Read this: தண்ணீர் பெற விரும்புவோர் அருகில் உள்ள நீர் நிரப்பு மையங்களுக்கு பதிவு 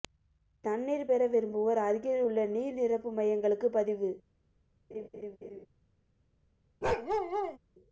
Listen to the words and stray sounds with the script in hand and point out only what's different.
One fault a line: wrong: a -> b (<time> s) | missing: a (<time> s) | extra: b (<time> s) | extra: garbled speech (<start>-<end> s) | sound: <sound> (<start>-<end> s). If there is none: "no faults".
sound: laugh (4.9-5.7 s)
sound: bark (6.8-7.6 s)